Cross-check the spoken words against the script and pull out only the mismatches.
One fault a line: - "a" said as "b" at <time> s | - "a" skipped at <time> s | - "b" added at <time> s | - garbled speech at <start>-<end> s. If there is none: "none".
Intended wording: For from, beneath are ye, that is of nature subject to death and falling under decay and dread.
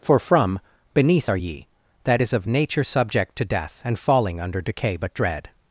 - "and" said as "but" at 4.9 s